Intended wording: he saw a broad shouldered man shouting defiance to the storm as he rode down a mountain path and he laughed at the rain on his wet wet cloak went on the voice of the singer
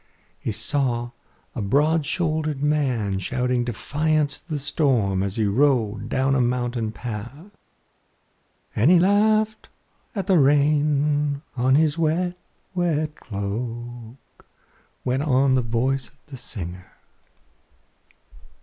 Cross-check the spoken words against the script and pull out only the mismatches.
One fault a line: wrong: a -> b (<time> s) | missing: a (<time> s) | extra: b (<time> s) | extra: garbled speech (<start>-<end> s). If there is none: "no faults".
no faults